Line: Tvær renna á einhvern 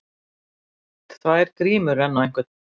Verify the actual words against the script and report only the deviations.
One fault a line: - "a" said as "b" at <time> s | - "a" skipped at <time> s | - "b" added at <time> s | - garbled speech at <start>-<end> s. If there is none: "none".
- "grímur" added at 1.6 s